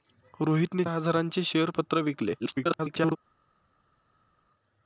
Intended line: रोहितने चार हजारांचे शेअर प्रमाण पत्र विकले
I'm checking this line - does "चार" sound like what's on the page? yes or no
no